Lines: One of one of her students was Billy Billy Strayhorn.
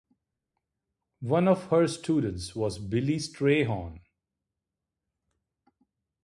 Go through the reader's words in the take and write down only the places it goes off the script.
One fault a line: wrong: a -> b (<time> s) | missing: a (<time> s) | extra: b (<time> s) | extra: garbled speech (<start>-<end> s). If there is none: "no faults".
missing: one of (1.6 s)
missing: Billy (3.2 s)